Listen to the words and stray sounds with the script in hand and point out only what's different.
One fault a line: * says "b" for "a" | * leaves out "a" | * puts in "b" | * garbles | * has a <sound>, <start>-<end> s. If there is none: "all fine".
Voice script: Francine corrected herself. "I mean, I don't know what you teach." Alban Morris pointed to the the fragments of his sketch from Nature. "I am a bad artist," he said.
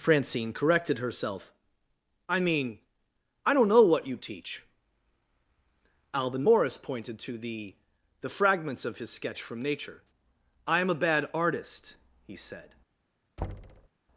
* has a thud, 13.4-13.9 s